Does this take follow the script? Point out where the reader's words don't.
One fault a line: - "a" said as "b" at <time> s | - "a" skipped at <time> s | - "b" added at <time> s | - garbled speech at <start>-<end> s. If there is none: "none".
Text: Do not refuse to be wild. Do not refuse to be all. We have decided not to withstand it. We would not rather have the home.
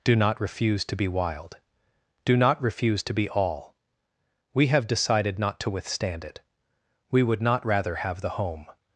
none